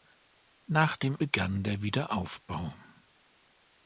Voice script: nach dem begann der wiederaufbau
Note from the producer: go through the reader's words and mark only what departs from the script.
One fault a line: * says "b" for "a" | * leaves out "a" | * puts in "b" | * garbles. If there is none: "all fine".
all fine